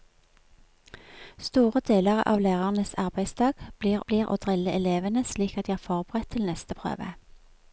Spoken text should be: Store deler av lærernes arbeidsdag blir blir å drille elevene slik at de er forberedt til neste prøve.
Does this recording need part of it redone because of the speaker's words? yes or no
no